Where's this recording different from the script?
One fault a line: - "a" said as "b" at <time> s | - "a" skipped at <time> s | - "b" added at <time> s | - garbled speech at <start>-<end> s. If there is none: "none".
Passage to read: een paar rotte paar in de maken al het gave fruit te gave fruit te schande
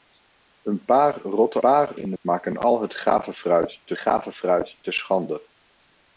none